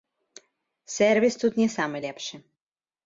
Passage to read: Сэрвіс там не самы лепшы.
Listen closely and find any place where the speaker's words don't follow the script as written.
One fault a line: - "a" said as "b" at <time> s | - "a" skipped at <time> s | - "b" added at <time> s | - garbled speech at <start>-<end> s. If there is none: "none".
- "там" said as "тут" at 1.4 s